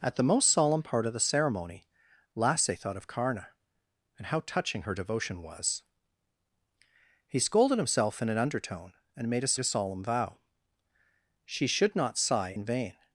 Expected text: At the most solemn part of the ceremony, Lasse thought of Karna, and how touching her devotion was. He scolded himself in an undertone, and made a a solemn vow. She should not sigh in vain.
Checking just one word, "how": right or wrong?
right